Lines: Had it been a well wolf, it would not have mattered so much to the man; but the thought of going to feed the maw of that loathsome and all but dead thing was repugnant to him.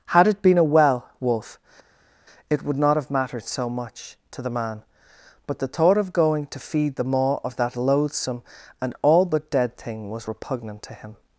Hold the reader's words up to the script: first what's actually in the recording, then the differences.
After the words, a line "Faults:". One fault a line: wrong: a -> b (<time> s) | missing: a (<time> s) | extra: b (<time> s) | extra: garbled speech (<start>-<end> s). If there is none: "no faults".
Had it been a well wolf, it would not have mattered so much to the man; but the thought of going to feed the maw of that loathsome and all but dead thing was repugnant to him.
Faults:
no faults